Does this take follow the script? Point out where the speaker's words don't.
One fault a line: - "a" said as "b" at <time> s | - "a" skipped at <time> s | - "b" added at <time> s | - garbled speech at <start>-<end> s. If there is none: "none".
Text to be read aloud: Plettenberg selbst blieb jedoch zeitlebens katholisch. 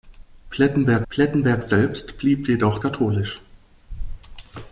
- "plettenberg" added at 1.1 s
- "zeitlebens" skipped at 2.8 s